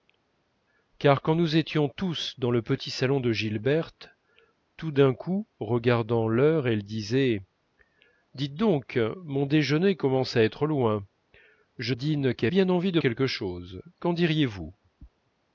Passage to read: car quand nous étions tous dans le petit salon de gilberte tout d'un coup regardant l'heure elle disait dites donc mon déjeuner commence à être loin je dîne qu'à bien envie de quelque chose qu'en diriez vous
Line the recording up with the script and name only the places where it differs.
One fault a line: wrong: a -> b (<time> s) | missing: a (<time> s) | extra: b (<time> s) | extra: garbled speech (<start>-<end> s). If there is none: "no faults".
no faults